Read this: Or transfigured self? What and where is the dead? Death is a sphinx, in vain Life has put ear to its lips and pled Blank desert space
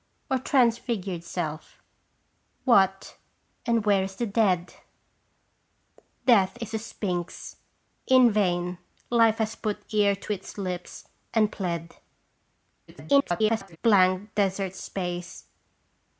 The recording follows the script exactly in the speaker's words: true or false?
false